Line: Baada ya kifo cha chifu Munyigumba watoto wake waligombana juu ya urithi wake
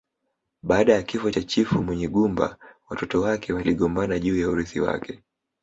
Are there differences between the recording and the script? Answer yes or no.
no